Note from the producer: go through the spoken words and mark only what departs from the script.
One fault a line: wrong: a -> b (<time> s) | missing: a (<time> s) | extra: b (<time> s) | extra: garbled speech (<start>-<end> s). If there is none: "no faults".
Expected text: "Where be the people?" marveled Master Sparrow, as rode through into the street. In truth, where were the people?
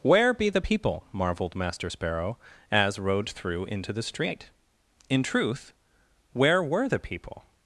no faults